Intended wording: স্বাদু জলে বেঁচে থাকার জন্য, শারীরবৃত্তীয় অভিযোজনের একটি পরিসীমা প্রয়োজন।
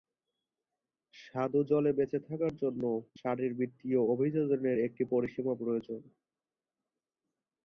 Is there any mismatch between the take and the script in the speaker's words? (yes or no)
no